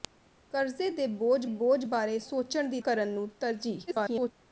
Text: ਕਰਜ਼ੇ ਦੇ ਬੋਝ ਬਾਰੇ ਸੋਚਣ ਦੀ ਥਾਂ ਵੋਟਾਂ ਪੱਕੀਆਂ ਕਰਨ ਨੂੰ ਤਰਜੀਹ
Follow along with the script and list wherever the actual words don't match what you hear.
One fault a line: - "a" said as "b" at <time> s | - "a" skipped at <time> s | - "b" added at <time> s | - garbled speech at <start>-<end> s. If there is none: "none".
- "ਬੋਝ" added at 1.5 s
- "ਥਾਂ ਵੋਟਾਂ ਪੱਕੀਆਂ" skipped at 2.8 s
- garbled speech at 3.9-4.3 s